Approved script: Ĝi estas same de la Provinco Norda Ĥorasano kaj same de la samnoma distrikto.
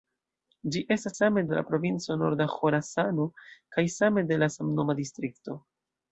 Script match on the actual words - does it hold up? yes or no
yes